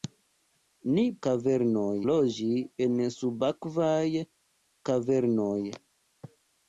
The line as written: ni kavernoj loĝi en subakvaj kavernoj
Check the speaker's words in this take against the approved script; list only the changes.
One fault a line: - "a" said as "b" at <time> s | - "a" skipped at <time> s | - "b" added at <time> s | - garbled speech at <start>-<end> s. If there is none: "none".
none